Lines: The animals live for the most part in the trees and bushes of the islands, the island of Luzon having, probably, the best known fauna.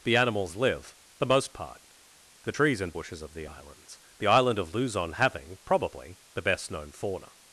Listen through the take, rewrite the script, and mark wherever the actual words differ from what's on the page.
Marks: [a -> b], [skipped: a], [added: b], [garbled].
The animals live [skipped: for] the most part [skipped: in] the trees and bushes of the islands, the island of Luzon having, probably, the best known fauna.